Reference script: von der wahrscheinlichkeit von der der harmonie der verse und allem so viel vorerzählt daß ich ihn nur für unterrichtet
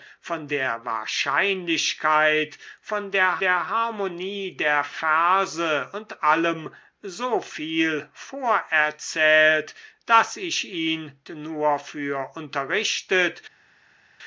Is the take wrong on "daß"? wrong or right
right